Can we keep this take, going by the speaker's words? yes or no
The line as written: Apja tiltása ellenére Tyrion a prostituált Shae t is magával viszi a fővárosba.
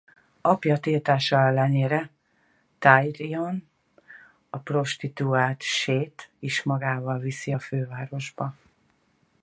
yes